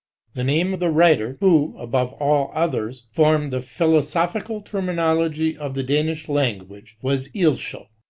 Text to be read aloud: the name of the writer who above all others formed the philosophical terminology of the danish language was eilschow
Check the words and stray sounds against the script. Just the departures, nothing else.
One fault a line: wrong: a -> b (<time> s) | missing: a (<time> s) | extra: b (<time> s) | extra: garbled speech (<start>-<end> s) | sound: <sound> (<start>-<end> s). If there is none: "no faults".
no faults